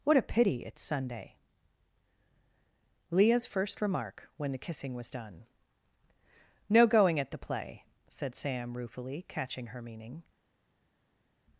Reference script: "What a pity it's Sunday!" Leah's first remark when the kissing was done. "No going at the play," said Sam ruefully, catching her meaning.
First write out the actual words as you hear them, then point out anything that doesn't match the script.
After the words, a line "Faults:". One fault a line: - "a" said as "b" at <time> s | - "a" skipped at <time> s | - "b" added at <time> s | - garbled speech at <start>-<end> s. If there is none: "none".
"What a pity it's Sunday!" Leah's first remark when the kissing was done. "No going at the play," said Sam ruefully, catching her meaning.
Faults:
none